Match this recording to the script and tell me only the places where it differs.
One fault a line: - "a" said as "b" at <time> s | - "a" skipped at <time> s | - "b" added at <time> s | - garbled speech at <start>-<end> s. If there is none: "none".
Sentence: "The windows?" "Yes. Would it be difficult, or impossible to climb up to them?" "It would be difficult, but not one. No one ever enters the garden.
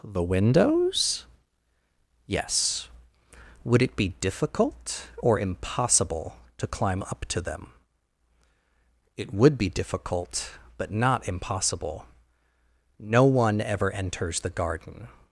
- "one" said as "impossible" at 11.3 s